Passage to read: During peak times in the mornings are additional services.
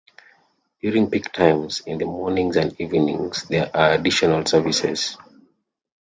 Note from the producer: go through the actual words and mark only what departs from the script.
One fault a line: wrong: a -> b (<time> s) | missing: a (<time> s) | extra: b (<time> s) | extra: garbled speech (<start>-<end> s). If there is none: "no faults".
extra: and evenings there (2.5 s)